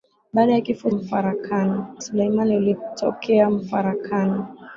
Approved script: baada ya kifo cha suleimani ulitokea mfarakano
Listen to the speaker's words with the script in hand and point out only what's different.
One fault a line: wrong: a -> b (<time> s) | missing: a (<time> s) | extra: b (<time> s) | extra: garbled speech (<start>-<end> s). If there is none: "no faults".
wrong: cha -> mfarakano (0.9 s)